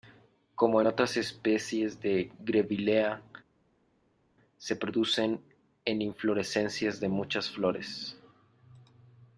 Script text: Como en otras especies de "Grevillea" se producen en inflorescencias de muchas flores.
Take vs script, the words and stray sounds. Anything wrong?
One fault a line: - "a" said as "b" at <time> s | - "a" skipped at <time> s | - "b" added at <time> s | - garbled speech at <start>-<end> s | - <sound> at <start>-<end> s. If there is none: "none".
none